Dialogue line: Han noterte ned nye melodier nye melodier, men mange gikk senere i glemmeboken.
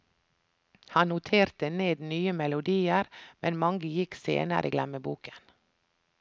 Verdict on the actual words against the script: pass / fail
fail